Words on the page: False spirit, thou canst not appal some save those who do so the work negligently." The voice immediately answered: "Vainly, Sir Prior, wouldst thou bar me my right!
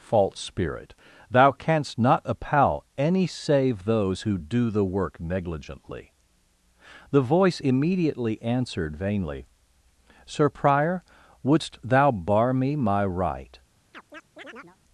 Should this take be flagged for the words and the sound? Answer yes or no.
yes